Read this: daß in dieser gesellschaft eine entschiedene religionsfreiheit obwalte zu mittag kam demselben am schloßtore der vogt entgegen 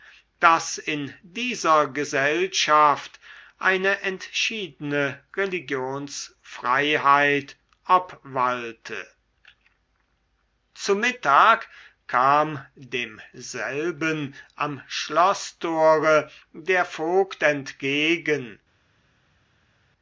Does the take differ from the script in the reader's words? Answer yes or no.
no